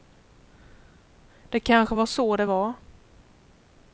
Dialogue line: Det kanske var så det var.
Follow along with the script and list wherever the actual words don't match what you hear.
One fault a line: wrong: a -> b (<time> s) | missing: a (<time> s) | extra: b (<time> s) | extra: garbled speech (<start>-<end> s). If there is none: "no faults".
no faults